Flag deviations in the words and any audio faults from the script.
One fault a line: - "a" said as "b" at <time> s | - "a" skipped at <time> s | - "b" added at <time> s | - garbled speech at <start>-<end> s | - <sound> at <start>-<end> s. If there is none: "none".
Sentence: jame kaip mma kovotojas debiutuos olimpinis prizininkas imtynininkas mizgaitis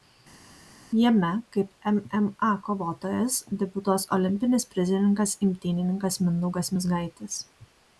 - "mindaugas" added at 6.3 s